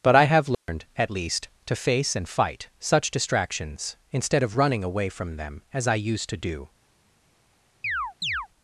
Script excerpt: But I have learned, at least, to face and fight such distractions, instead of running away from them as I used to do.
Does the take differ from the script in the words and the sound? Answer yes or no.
yes